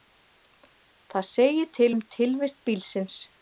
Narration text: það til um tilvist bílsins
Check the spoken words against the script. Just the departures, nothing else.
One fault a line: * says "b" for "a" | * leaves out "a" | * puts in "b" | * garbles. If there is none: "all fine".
* puts in "segir"